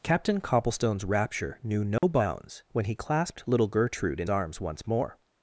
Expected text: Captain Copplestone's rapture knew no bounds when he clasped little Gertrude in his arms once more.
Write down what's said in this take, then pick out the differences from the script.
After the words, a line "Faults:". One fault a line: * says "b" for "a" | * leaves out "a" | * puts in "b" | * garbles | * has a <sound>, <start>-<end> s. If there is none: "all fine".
Captain Copplestone's rapture knew no bounds when he clasped little Gertrude in arms once more.
Faults:
* has a dropout, 2.0-2.0 s
* leaves out "his"